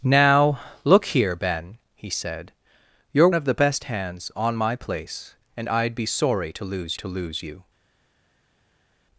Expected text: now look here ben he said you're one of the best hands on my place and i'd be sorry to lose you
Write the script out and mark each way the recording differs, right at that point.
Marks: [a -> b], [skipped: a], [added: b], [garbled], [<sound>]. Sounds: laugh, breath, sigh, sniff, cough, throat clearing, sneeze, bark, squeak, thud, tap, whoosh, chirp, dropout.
now look here ben he said you're [skipped: one] of the best hands on my place and i'd be sorry to lose [added: to lose] you